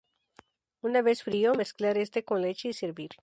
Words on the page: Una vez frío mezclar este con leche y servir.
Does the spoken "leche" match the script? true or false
true